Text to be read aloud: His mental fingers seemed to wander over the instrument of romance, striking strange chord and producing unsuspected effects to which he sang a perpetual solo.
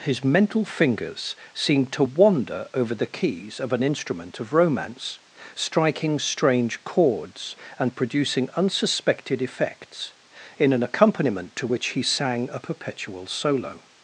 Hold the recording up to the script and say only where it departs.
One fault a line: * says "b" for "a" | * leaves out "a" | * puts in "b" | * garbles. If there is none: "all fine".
* puts in "keys of an"
* says "chords" for "chord"
* puts in "in an accompaniment"